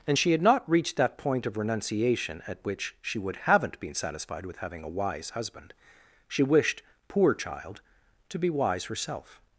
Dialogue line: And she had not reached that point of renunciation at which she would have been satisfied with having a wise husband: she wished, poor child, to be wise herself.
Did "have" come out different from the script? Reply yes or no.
yes